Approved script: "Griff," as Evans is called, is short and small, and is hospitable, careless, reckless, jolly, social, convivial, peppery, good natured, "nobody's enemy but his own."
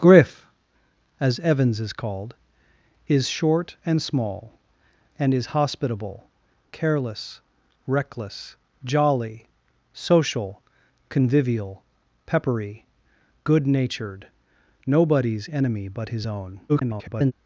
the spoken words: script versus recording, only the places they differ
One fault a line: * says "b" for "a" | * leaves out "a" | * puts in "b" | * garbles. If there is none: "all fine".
* garbles